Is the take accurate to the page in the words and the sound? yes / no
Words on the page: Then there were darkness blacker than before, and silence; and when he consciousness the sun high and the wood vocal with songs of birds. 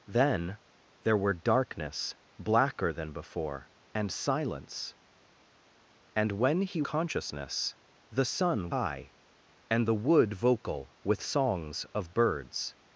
yes